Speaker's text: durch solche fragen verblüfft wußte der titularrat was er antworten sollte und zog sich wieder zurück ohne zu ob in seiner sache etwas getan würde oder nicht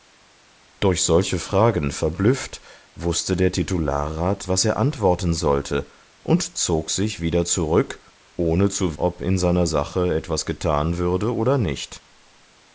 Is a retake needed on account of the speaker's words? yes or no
no